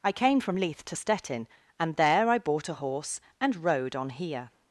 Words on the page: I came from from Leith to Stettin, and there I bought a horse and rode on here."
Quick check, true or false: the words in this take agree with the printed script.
false